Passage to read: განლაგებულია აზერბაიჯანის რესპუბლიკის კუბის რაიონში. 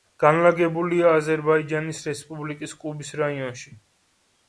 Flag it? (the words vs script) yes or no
no